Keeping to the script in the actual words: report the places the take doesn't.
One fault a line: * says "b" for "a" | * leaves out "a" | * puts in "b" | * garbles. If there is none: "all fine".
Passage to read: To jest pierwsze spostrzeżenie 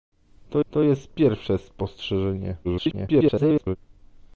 * puts in "to"
* garbles